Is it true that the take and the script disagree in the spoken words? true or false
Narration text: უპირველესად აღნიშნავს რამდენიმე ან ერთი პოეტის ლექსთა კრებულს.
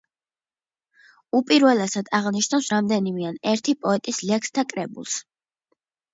false